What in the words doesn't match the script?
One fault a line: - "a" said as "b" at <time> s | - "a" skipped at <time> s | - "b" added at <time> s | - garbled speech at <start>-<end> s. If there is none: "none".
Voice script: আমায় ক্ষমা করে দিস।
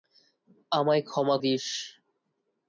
- "করে" skipped at 1.4 s